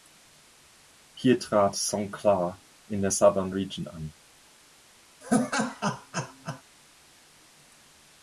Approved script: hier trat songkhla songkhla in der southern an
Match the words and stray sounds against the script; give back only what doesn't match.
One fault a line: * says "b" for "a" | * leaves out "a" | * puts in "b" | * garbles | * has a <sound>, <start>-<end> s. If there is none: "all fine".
* leaves out "songkhla"
* puts in "region"
* has a laugh, 5.2-6.6 s